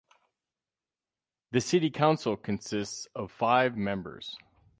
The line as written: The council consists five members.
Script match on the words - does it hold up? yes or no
no